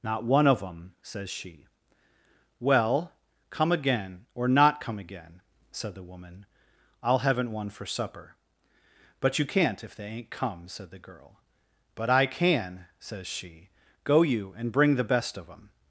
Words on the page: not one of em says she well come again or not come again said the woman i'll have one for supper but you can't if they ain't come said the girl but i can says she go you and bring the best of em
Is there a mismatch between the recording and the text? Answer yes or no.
yes